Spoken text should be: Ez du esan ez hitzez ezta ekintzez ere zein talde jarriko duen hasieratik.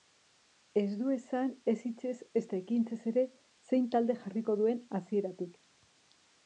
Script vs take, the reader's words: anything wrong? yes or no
no